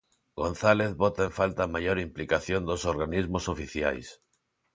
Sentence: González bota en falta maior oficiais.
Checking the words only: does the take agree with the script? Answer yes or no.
no